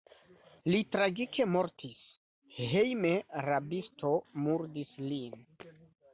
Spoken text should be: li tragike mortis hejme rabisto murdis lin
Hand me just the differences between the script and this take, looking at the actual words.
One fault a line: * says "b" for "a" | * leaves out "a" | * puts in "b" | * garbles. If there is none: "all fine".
all fine